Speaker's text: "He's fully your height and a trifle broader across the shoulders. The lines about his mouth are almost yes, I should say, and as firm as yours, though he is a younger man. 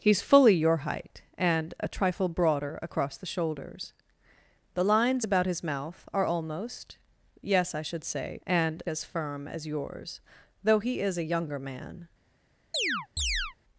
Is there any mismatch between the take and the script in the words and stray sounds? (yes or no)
yes